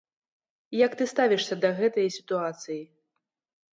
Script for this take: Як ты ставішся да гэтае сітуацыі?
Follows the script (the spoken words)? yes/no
yes